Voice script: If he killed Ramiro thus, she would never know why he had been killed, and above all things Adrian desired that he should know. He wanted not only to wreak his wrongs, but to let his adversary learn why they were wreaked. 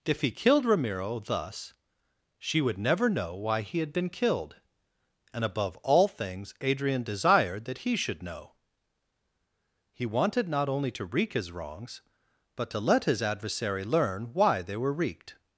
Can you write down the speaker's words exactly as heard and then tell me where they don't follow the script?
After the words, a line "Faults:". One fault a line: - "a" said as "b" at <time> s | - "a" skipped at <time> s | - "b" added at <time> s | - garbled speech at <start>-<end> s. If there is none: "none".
If he killed Ramiro thus, she would never know why he had been killed, and above all things Adrian desired that he should know. He wanted not only to wreak his wrongs, but to let his adversary learn why they were wreaked.
Faults:
none